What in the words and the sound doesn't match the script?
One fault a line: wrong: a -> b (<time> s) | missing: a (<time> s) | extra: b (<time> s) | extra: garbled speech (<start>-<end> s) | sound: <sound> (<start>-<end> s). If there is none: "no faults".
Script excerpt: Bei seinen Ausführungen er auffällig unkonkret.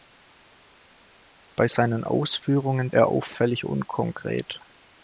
no faults